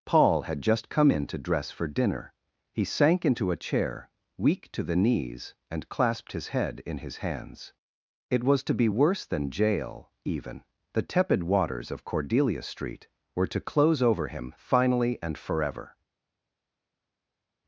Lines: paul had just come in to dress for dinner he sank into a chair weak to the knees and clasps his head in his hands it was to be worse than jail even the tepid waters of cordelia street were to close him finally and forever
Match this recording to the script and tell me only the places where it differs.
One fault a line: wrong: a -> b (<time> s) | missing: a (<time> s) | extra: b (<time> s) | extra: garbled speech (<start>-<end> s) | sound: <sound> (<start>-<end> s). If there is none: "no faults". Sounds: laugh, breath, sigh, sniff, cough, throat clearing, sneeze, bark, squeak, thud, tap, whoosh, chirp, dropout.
wrong: clasps -> clasped (5.9 s)
extra: over (14.0 s)